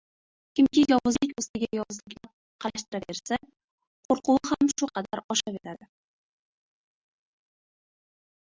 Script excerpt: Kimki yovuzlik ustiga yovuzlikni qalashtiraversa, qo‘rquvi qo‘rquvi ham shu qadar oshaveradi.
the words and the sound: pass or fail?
fail